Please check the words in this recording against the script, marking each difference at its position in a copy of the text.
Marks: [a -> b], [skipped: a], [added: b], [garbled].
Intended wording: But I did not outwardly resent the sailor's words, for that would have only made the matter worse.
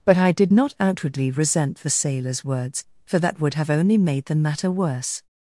But I did not outwardly resent the sailor's words, for that would have only made the matter worse.